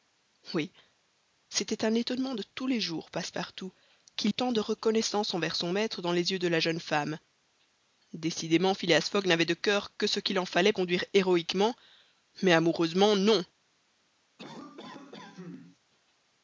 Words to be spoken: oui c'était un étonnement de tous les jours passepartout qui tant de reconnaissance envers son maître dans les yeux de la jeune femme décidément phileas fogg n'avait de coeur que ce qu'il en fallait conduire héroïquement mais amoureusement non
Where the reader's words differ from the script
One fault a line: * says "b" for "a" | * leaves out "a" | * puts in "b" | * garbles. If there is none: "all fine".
all fine